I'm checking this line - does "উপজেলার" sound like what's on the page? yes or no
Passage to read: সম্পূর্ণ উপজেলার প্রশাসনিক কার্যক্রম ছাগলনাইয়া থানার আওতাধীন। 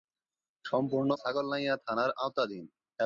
no